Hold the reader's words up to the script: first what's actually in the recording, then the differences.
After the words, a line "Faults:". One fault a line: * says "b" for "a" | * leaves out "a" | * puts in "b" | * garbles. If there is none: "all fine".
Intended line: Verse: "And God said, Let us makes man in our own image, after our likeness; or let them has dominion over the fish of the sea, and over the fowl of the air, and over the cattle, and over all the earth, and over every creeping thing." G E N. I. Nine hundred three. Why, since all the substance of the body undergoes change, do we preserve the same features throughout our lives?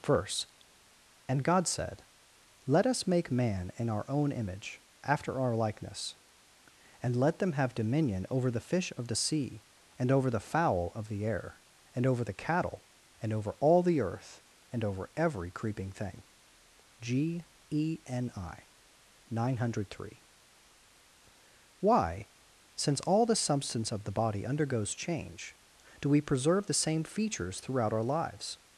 Verse: "And God said, Let us make man in our own image, after our likeness; and let them have dominion over the fish of the sea, and over the fowl of the air, and over the cattle, and over all the earth, and over every creeping thing." G E N. I. Nine hundred three. Why, since all the substance of the body undergoes change, do we preserve the same features throughout our lives?
Faults:
* says "make" for "makes"
* says "and" for "or"
* says "have" for "has"